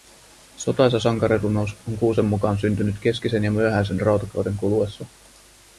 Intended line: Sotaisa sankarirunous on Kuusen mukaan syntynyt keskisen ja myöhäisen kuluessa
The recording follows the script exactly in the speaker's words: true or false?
false